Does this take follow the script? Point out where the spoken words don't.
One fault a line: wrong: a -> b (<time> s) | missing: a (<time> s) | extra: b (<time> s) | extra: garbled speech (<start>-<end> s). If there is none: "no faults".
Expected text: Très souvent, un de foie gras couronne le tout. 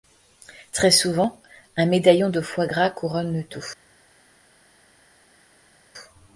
extra: médaillon (1.9 s)